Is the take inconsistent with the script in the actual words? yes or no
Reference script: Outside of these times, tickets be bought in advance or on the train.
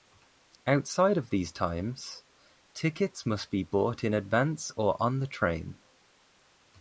yes